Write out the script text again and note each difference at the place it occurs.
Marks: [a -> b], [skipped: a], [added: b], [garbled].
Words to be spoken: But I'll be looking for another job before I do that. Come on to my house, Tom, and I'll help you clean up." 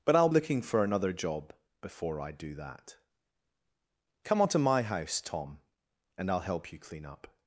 But I'll [skipped: be] looking for another job before I do that. Come on to my house, Tom, and I'll help you clean up."